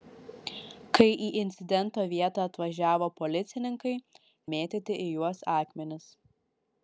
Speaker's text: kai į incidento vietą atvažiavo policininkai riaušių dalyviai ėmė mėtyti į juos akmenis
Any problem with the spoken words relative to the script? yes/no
yes